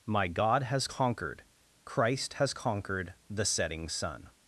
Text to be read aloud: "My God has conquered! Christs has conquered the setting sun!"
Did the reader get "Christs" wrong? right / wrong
wrong